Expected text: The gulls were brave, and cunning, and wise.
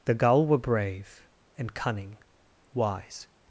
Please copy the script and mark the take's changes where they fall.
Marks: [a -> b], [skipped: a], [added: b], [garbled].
The [gulls -> gull] were brave, and cunning, [skipped: and] wise.